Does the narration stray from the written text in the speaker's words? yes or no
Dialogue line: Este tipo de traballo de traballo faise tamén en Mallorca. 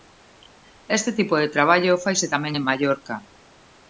yes